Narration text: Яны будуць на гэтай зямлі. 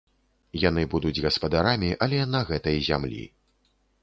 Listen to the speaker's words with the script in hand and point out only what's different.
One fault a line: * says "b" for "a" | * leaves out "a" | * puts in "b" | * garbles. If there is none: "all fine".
* puts in "гаспадарамі але"